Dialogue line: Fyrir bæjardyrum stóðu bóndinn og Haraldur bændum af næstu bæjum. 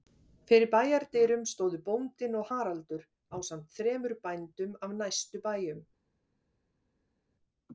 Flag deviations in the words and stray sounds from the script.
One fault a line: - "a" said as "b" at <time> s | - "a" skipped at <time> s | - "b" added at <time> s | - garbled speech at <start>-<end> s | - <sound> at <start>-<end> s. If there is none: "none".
- "ásamt þremur" added at 3.4 s